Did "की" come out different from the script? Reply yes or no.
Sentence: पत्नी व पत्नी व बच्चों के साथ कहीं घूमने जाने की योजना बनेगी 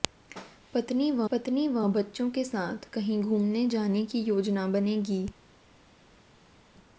no